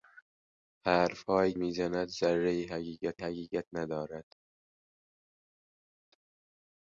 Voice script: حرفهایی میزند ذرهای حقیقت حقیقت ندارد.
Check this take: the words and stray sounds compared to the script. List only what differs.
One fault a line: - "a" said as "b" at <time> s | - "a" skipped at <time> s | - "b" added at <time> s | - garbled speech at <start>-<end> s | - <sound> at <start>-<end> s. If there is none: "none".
none